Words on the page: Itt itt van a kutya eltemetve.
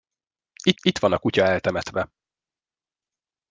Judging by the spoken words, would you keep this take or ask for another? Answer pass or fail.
pass